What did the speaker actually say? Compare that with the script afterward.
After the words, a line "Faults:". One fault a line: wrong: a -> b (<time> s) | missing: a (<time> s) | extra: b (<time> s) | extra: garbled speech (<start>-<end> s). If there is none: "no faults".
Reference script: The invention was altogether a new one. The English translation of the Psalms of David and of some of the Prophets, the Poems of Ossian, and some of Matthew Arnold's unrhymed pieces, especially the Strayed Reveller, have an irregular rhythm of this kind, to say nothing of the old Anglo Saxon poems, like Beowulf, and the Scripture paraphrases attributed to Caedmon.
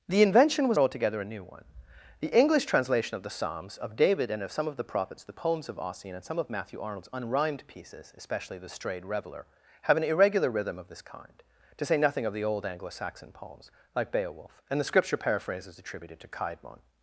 The invention was altogether a new one. The English translation of the Psalms of David and of some of the Prophets, the Poems of Ossian, and some of Matthew Arnold's unrhymed pieces, especially the Strayed Reveller, have an irregular rhythm of this kind, to say nothing of the old Anglo Saxon poems, like Beowulf, and the Scripture paraphrases attributed to Caedmon.
Faults:
no faults